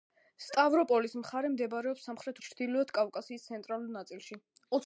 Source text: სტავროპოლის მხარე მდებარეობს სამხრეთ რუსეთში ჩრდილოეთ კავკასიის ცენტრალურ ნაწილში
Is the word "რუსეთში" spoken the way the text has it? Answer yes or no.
no